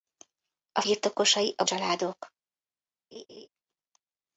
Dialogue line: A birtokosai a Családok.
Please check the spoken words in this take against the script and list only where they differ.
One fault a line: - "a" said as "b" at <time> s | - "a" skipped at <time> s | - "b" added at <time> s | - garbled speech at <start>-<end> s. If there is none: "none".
none